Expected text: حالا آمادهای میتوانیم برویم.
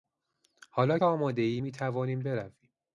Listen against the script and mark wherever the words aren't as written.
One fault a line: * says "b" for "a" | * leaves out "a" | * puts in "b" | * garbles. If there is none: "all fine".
all fine